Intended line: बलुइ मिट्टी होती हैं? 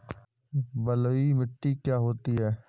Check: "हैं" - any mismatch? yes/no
no